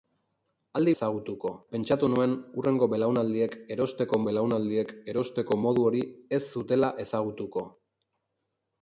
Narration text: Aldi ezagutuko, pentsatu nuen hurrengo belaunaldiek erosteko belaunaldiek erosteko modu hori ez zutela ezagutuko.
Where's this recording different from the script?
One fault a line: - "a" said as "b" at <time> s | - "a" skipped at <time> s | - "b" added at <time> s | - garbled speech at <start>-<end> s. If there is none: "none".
none